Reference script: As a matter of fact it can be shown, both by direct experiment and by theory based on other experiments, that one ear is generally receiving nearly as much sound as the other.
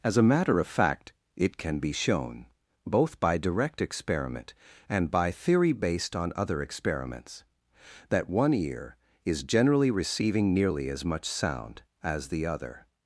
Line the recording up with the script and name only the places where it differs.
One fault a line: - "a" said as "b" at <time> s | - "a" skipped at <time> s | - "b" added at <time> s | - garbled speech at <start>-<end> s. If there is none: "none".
none